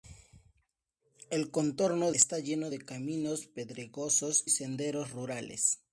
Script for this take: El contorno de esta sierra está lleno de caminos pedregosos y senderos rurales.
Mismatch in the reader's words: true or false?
true